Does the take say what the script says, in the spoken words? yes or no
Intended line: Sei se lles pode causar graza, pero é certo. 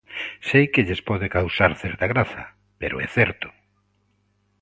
no